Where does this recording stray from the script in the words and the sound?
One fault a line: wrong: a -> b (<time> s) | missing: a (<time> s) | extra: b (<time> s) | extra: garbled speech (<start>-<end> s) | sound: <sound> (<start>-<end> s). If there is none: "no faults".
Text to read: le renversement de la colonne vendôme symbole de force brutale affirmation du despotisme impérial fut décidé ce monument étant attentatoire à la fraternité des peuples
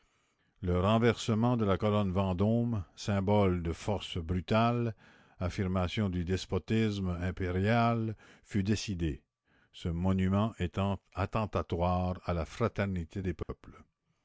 sound: dropout (13.4-13.5 s)